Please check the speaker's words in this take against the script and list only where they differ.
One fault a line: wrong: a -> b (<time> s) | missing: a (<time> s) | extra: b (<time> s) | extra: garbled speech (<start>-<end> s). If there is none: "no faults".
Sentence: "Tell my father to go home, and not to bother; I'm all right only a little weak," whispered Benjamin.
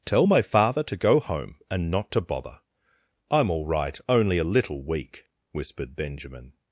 no faults